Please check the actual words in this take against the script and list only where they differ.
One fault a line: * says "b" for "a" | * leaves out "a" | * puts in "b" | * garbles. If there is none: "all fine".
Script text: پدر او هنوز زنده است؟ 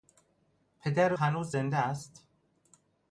* leaves out "او"